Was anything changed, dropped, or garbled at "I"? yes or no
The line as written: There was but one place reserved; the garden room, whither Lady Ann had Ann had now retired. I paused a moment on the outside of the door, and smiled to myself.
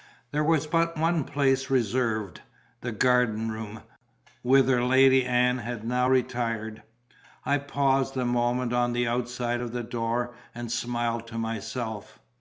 no